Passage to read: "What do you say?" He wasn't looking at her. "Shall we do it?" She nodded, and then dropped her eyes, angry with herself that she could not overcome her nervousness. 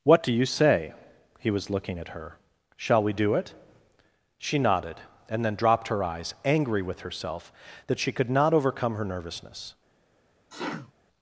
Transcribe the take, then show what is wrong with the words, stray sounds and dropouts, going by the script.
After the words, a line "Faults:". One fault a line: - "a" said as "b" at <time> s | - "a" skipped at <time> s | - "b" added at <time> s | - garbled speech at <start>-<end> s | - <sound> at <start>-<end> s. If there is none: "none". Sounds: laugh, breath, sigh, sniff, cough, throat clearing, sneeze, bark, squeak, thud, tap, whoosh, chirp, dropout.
"What do you say?" He was looking at her. "Shall we do it?" She nodded, and then dropped her eyes, angry with herself that she could not overcome her nervousness.
Faults:
- "wasn't" said as "was" at 1.5 s
- sneeze at 10.5-10.9 s